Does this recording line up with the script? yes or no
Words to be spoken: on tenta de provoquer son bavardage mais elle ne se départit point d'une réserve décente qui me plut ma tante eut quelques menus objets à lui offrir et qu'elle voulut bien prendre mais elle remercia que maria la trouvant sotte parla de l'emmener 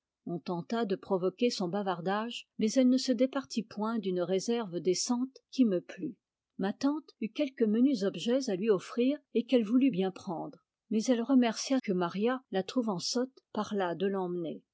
yes